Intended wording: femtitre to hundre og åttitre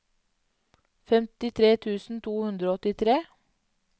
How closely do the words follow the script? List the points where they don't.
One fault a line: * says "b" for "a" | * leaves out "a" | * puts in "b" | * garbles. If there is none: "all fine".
* puts in "tusen"